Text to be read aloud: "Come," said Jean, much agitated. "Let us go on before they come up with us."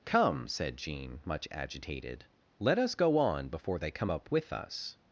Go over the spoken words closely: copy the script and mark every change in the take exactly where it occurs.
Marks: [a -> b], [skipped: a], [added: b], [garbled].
"Come," said Jean, much agitated. "Let us go on before they come up with us."